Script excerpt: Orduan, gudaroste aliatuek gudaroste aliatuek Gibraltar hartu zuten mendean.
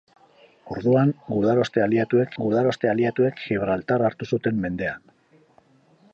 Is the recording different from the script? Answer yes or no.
no